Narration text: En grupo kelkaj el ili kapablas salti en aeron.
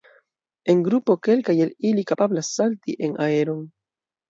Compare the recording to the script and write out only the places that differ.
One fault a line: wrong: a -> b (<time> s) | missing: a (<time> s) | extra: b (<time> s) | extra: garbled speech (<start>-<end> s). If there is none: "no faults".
no faults